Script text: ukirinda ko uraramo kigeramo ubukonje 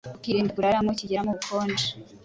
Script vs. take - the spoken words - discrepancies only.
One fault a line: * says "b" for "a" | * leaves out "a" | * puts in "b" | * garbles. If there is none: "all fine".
all fine